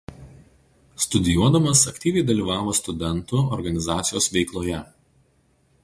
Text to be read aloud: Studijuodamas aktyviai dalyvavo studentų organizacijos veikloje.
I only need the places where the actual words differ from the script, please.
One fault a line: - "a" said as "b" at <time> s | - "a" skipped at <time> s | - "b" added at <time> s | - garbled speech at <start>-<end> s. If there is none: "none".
none